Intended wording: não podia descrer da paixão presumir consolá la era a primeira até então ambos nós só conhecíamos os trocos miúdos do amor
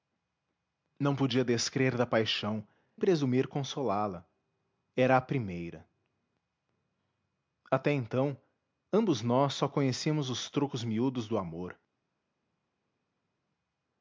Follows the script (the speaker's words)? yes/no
yes